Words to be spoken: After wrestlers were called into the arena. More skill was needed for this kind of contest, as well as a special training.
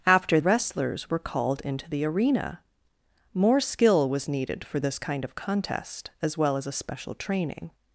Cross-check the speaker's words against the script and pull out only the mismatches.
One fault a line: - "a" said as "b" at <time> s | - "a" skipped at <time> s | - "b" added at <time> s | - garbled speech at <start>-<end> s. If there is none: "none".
none